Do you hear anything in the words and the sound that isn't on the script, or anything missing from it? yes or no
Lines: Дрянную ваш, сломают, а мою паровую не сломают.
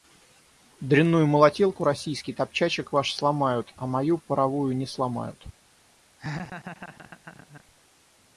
yes